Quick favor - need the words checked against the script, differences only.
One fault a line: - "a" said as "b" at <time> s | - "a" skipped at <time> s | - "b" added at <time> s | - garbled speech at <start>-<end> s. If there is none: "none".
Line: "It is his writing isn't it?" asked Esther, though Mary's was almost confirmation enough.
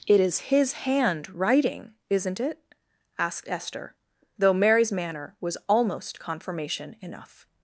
- "hand" added at 0.7 s
- "manner" added at 4.9 s